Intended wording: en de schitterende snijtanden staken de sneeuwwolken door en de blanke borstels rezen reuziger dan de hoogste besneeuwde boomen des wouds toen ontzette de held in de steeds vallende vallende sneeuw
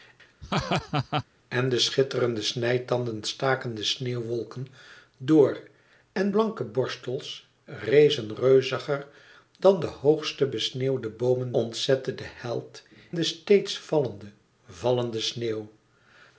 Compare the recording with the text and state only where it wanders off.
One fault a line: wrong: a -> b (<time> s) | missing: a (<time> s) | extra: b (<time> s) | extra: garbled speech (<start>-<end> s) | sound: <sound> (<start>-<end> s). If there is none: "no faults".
sound: laugh (0.4-1.2 s)
missing: de (6.3 s)
missing: des wouds toen (11.5 s)
missing: in (12.8 s)